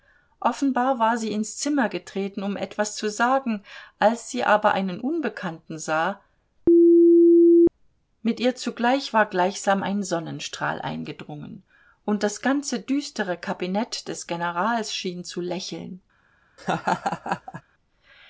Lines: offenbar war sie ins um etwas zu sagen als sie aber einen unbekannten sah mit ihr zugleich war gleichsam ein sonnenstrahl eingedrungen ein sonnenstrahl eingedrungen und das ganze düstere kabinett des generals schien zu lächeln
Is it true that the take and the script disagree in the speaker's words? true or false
true